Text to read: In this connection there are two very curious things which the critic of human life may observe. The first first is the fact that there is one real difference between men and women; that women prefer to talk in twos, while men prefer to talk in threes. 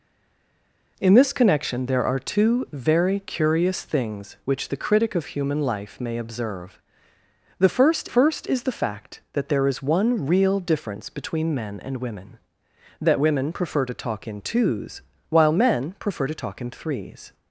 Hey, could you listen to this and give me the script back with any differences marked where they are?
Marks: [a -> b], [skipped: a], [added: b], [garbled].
In this connection there are two very curious things which the critic of human life may observe. The first first is the fact that there is one real difference between men and women; that women prefer to talk in twos, while men prefer to talk in threes.